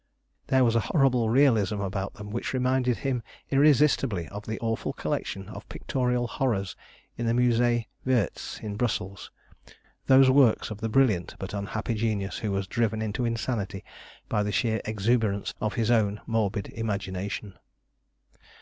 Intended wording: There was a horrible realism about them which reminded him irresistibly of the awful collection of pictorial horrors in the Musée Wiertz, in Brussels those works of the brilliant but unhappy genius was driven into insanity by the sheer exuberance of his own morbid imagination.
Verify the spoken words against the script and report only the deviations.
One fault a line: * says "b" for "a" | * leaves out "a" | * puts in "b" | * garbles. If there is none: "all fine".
* puts in "who"